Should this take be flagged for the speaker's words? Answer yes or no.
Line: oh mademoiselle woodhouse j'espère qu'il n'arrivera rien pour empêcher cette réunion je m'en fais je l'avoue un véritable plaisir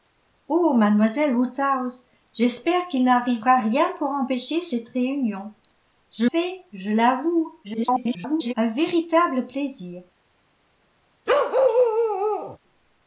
yes